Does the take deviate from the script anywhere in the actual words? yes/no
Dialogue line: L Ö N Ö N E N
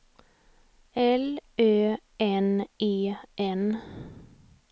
yes